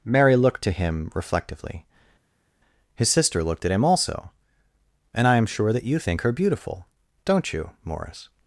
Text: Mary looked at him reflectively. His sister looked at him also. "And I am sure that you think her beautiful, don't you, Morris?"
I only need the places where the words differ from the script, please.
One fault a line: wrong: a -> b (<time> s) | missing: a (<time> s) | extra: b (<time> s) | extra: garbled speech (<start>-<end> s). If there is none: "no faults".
wrong: at -> to (0.6 s)